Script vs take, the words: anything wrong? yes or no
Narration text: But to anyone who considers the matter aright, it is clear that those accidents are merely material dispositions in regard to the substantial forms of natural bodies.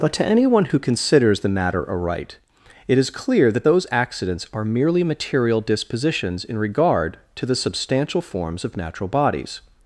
no